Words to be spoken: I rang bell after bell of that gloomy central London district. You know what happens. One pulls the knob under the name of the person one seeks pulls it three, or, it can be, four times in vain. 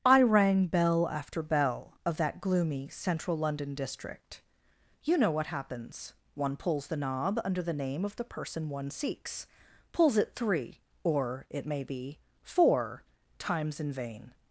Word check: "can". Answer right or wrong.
wrong